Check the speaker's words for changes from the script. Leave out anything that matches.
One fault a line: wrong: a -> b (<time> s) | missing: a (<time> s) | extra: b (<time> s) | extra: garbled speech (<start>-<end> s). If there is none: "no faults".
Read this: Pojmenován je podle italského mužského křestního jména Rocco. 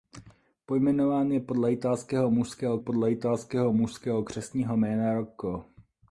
extra: podle italského mužského (2.8 s)